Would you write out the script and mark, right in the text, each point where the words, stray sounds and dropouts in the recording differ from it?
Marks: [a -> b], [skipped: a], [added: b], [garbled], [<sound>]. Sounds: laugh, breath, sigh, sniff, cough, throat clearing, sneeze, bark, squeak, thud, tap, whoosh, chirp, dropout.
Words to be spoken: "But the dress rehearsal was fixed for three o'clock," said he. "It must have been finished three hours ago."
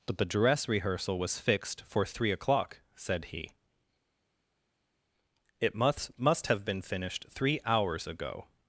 "But the dress rehearsal was fixed for three o'clock," said he. "It must [added: must] have been finished three hours ago."